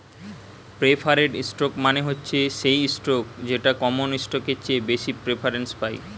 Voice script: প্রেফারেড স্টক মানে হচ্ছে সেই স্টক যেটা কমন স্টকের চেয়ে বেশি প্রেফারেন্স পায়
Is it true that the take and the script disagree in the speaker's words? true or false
false